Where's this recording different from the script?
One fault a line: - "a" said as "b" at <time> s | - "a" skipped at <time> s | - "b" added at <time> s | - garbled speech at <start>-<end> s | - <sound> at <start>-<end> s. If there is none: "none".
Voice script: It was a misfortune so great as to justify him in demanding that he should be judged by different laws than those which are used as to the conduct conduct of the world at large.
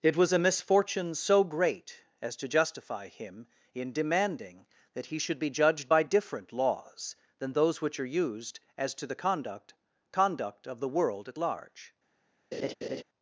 - laugh at 12.5-13.0 s